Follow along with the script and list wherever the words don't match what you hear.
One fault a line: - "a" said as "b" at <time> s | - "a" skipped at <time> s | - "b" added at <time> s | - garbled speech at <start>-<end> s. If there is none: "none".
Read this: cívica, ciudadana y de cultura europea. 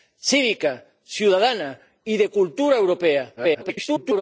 - garbled speech at 3.4-4.2 s